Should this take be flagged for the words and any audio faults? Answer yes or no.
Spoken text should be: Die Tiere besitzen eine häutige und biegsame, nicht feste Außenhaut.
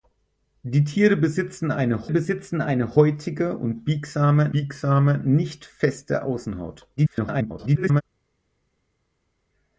yes